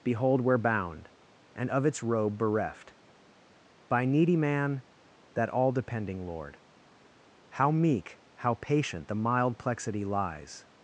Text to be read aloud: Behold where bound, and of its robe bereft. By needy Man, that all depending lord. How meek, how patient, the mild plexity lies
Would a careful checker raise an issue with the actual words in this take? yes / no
no